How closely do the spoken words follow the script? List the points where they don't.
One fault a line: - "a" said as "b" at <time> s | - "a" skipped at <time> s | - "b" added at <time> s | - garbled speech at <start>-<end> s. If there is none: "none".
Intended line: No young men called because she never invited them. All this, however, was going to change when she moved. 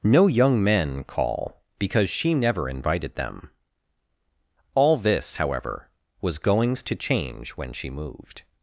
- "called" said as "call" at 1.0 s
- "going" said as "goings" at 6.4 s